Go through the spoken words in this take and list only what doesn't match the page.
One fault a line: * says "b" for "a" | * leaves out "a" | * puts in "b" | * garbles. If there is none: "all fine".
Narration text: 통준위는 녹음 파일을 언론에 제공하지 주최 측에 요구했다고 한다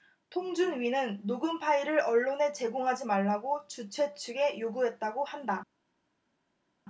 * puts in "말라고"